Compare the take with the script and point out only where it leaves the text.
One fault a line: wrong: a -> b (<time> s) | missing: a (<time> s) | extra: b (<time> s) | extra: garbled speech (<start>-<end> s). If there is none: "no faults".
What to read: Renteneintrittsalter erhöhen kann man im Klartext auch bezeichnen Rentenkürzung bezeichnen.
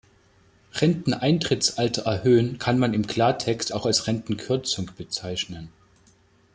wrong: bezeichnen -> als (3.9 s)